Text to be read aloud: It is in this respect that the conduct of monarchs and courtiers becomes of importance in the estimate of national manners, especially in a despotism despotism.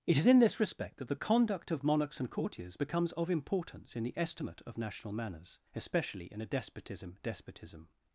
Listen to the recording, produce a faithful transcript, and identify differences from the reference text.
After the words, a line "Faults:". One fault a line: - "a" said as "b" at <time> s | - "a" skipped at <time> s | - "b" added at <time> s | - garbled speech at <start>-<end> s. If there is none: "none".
It is in this respect that the conduct of monarchs and courtiers becomes of importance in the estimate of national manners, especially in a despotism despotism.
Faults:
none